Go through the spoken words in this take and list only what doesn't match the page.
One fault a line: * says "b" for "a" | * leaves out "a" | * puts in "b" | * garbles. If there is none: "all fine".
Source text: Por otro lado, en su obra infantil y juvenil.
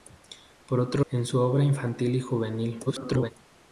* leaves out "lado"
* garbles